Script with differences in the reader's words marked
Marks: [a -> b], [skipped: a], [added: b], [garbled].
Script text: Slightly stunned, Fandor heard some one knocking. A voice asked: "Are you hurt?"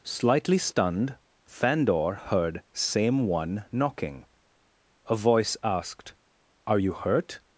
Slightly stunned, Fandor heard [some -> same] one knocking. A voice asked: "Are you hurt?"